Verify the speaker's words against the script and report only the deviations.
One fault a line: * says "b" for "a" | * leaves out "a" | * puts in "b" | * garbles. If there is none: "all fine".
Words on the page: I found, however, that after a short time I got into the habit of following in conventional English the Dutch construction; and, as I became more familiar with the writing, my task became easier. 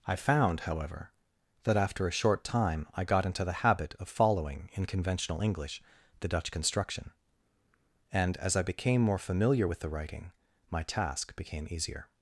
all fine